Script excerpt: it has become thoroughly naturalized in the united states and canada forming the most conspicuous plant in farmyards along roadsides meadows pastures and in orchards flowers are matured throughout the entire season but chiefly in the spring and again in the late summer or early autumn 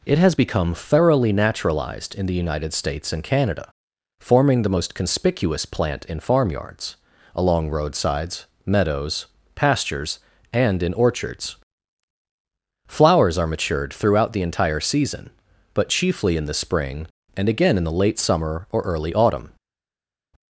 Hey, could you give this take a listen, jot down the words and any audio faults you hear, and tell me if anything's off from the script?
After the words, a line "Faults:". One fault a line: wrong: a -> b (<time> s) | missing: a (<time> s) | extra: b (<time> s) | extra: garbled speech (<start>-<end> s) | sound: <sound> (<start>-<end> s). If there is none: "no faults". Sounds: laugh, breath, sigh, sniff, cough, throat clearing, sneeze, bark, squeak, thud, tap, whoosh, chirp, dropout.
it has become thoroughly naturalized in the united states and canada forming the most conspicuous plant in farmyards along roadsides meadows pastures and in orchards flowers are matured throughout the entire season but chiefly in the spring and again in the late summer or early autumn
Faults:
no faults